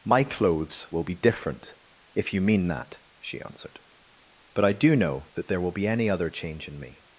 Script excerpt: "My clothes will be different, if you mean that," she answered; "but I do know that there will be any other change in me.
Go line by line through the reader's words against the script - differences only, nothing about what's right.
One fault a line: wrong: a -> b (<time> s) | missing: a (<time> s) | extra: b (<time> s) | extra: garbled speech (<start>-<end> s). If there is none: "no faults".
no faults